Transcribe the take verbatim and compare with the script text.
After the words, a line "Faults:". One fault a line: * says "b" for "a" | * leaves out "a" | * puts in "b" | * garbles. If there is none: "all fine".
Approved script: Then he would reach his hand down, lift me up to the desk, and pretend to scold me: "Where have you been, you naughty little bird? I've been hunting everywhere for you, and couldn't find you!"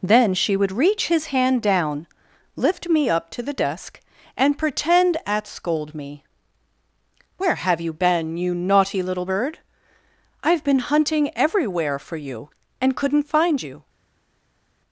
Then she would reach his hand down, lift me up to the desk, and pretend at scold me: "Where have you been, you naughty little bird? I've been hunting everywhere for you, and couldn't find you!"
Faults:
* says "she" for "he"
* says "at" for "to"